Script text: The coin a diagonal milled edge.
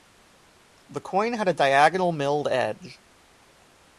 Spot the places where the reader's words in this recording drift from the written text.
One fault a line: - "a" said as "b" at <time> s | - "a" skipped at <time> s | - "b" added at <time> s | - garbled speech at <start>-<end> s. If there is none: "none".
- "had" added at 1.3 s